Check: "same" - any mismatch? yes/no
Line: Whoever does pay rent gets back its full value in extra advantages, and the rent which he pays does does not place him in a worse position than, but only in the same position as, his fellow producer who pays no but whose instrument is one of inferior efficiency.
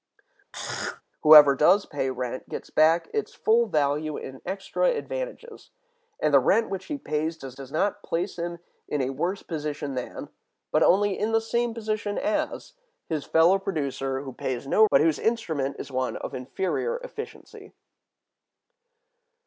no